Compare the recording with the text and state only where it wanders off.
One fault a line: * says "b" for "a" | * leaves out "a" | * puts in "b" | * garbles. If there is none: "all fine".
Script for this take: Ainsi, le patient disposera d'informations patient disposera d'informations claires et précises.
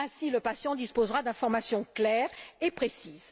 * leaves out "patient disposera d'informations"